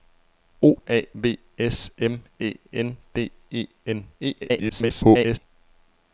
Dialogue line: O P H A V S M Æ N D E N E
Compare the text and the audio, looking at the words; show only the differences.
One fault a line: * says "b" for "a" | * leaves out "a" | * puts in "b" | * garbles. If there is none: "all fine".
* leaves out "P H"
* garbles